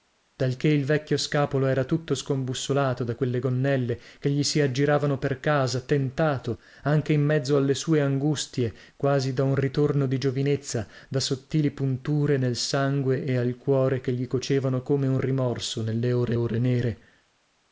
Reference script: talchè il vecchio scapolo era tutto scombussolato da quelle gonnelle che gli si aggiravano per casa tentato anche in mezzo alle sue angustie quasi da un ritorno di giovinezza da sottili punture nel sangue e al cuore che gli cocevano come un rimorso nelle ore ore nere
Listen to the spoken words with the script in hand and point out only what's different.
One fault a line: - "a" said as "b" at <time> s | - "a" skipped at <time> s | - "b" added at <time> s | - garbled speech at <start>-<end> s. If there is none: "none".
none